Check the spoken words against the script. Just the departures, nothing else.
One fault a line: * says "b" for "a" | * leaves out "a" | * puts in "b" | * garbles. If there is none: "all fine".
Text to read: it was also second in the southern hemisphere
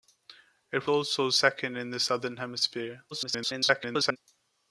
* leaves out "was"
* garbles